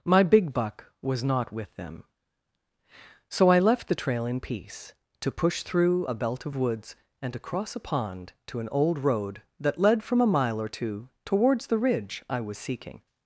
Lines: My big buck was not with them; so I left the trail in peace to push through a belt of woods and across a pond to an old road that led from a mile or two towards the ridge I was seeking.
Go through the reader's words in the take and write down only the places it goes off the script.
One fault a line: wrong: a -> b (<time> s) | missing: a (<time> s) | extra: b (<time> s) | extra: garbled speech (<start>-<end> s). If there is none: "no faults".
no faults